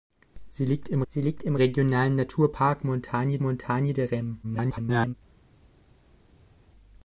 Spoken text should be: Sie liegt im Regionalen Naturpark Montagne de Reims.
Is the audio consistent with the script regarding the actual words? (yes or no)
no